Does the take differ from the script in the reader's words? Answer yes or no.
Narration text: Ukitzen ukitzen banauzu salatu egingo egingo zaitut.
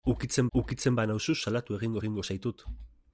no